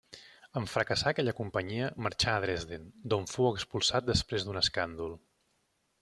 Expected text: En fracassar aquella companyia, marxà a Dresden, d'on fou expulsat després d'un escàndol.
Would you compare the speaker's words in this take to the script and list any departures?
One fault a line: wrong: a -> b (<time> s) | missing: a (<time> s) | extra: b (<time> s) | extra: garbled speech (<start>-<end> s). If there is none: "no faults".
no faults